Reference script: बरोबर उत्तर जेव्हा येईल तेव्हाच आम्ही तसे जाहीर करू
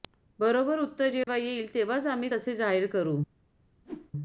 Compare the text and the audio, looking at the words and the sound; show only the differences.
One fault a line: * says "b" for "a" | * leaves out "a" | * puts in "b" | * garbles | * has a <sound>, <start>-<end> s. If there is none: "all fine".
* has a dropout, 1.2-1.3 s
* has a whoosh, 3.8-4.1 s